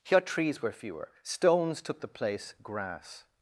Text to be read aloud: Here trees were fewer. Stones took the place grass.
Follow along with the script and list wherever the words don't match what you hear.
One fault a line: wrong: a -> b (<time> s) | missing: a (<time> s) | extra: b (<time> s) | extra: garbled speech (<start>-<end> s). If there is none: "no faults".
no faults